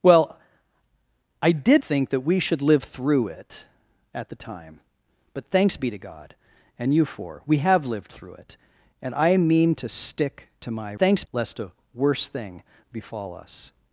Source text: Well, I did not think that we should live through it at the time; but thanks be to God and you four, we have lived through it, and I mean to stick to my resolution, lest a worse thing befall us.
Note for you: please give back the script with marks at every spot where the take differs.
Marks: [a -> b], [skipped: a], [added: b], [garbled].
Well, I did [skipped: not] think that we should live through it at the time; but thanks be to God and you four, we have lived through it, and I mean to stick to my [resolution, -> thanks] lest a worse thing befall us.